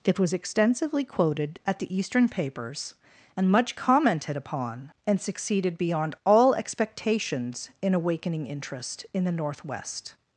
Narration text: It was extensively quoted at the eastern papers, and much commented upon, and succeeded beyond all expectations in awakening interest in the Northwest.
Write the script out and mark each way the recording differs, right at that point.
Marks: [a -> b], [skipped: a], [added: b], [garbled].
It was extensively quoted at the eastern papers, and much commented upon, and succeeded beyond all expectations in awakening interest in the Northwest.